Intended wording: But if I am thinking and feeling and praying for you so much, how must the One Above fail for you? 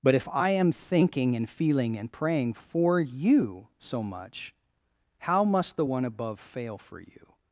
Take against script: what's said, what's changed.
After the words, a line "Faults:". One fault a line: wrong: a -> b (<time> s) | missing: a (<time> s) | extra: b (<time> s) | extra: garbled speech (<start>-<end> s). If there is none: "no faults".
But if I am thinking and feeling and praying for you so much, how must the One Above fail for you?
Faults:
no faults